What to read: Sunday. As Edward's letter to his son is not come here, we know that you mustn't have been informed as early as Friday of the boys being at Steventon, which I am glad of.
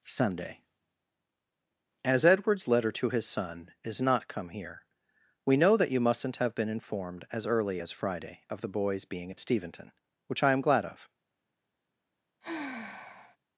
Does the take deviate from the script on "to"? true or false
false